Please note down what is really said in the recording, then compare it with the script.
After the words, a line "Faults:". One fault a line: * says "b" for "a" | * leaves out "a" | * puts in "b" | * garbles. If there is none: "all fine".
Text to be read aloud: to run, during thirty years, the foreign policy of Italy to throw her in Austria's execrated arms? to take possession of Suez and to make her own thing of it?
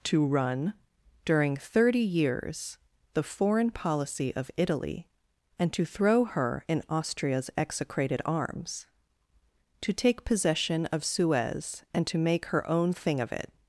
to run, during thirty years, the foreign policy of Italy and to throw her in Austria's execrated arms? to take possession of Suez and to make her own thing of it?
Faults:
* puts in "and"